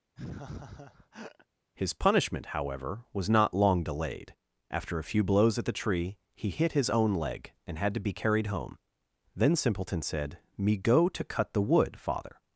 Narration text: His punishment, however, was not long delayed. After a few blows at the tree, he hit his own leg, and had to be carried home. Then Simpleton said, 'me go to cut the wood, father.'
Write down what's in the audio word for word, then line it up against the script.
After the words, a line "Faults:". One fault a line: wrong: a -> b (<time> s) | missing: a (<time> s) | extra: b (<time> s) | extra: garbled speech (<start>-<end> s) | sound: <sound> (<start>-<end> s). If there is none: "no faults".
His punishment, however, was not long delayed. After a few blows at the tree, he hit his own leg, and had to be carried home. Then Simpleton said, 'me go to cut the wood, father.'
Faults:
sound: laugh (0.2-1.5 s)